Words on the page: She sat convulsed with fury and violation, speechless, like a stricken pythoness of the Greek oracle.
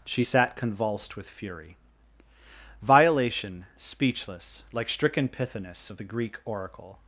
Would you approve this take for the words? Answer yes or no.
no